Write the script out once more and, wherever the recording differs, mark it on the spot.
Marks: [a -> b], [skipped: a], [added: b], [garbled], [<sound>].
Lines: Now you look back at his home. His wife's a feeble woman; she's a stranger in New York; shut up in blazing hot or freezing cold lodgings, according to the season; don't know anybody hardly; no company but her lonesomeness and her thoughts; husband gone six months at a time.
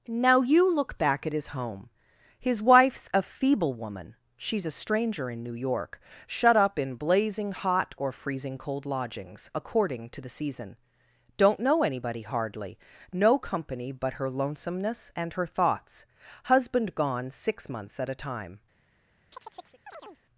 Now you look back at his home. His wife's a feeble woman; she's a stranger in New York; shut up in blazing hot or freezing cold lodgings, according to the season; don't know anybody hardly; no company but her lonesomeness and her thoughts; husband gone six months at a time. [chirp]